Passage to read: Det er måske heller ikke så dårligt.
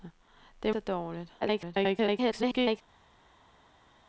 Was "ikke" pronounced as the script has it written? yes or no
no